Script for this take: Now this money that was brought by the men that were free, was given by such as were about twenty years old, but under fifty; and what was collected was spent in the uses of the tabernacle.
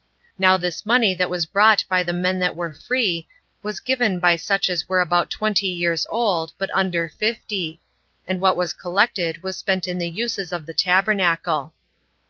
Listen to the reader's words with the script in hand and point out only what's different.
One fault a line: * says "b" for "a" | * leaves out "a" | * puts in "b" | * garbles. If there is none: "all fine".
all fine